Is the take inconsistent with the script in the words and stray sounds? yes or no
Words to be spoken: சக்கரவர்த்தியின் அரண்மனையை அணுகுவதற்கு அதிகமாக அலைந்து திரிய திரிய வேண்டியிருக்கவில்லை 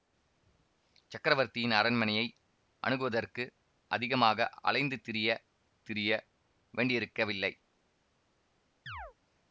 yes